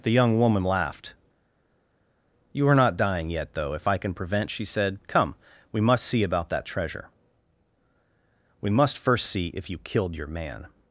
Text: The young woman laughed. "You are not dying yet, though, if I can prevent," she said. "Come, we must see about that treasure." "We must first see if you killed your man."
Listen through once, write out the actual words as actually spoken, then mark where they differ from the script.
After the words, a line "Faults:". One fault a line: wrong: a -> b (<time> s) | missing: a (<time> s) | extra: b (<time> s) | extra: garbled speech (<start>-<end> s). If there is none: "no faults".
The young woman laughed. "You are not dying yet, though, if I can prevent," she said. "Come, we must see about that treasure." "We must first see if you killed your man."
Faults:
no faults